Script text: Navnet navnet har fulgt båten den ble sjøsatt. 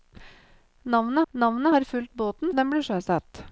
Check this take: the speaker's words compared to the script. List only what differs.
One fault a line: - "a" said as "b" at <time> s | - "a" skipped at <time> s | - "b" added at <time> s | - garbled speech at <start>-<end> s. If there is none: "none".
none